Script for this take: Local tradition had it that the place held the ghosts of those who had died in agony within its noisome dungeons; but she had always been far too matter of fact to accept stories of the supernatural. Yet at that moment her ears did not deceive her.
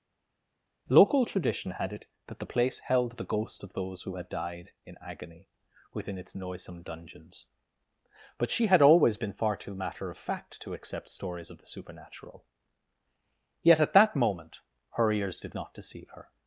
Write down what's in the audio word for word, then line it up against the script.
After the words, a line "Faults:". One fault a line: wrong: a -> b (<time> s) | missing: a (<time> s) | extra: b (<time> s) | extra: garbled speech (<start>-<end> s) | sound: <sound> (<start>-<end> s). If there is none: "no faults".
Local tradition had it that the place held the ghost of those who had died in agony within its noisome dungeons; but she had always been far too matter of fact to accept stories of the supernatural. Yet at that moment her ears did not deceive her.
Faults:
wrong: ghosts -> ghost (3.2 s)